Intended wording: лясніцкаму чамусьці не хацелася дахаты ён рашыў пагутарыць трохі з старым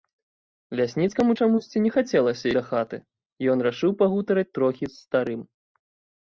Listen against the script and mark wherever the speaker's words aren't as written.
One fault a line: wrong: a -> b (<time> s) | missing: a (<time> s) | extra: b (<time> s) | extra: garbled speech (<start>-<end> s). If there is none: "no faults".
no faults